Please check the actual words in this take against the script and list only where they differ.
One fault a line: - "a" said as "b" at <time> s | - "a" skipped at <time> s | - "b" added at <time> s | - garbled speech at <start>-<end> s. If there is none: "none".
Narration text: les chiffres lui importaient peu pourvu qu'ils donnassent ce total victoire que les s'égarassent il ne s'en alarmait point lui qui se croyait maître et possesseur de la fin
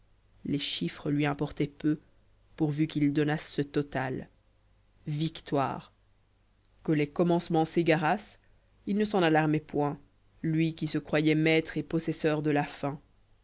- "commencements" added at 7.1 s